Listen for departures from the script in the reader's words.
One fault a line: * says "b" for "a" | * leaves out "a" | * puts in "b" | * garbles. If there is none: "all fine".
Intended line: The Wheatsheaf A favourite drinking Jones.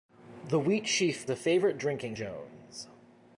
all fine